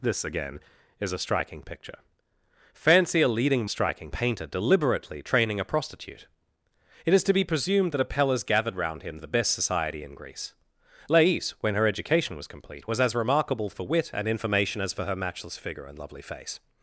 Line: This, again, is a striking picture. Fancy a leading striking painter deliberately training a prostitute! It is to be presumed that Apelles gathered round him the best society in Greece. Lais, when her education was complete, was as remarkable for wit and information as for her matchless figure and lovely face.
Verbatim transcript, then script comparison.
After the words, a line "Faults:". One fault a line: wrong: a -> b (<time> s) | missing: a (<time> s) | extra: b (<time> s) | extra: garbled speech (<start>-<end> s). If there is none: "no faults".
This, again, is a striking picture. Fancy a leading striking painter deliberately training a prostitute! It is to be presumed that Apelles gathered round him the best society in Greece. Lais, when her education was complete, was as remarkable for wit and information as for her matchless figure and lovely face.
Faults:
no faults